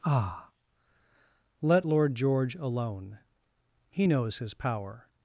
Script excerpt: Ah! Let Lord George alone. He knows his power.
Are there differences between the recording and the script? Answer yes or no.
no